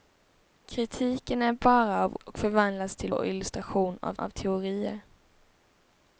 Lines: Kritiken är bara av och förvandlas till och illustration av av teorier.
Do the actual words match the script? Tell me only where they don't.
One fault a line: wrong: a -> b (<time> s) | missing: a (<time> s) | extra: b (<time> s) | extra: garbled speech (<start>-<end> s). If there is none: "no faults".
no faults